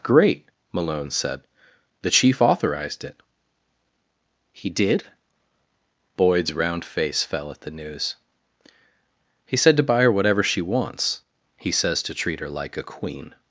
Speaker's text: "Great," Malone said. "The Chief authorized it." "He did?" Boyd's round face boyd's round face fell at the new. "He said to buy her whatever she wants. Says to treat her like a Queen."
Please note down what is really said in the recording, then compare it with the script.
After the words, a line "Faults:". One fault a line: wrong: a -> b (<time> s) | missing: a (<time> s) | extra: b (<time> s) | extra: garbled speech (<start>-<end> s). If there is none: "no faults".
"Great," Malone said. "The Chief authorized it." "He did?" Boyd's round face fell at the news. "He said to buy her whatever she wants. He says to treat her like a Queen."
Faults:
missing: boyd's round face (7.2 s)
wrong: new -> news (7.7 s)
extra: He (11.6 s)